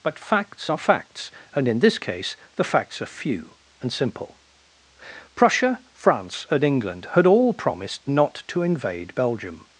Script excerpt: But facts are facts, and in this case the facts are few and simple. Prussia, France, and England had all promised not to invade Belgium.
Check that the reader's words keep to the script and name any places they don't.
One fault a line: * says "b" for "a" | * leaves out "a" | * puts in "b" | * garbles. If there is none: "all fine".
all fine